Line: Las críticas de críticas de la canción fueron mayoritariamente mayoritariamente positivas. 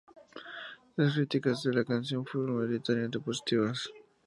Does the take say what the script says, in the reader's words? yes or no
no